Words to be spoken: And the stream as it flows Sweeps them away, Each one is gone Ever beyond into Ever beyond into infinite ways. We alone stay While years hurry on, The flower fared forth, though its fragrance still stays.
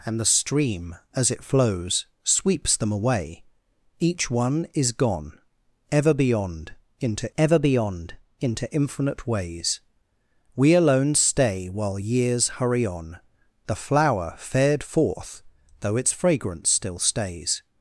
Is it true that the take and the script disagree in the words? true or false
false